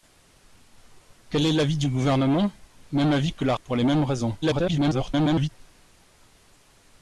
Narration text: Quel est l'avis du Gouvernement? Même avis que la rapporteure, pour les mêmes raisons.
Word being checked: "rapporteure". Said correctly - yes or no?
no